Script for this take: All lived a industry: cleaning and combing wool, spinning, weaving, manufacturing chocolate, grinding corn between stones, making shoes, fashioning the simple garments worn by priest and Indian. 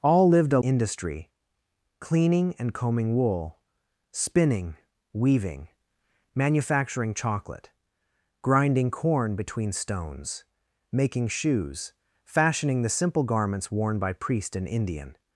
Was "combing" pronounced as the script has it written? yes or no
yes